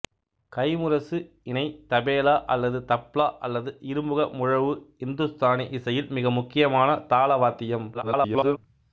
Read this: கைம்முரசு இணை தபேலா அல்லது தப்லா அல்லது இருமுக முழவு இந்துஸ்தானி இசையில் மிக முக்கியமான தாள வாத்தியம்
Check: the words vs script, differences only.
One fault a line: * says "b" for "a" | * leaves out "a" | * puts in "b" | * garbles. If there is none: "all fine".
* garbles